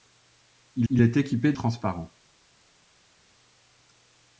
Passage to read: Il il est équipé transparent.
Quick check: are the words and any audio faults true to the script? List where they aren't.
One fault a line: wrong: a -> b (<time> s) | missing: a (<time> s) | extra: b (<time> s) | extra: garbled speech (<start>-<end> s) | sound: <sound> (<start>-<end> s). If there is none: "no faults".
no faults